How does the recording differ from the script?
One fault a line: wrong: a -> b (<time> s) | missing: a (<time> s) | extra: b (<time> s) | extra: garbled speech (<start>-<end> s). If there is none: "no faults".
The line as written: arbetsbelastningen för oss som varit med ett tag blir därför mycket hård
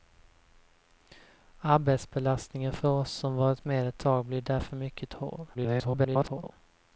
extra: garbled speech (5.5-6.5 s)